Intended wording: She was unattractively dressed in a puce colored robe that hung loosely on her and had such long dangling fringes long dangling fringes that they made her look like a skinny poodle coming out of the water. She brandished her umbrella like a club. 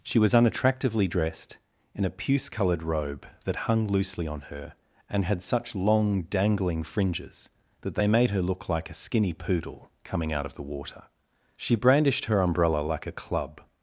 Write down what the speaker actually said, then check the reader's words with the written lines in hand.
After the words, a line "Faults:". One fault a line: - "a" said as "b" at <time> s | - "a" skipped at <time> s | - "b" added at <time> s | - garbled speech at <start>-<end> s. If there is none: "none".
She was unattractively dressed in a puce colored robe that hung loosely on her and had such long dangling fringes that they made her look like a skinny poodle coming out of the water. She brandished her umbrella like a club.
Faults:
- "long dangling fringes" skipped at 7.5 s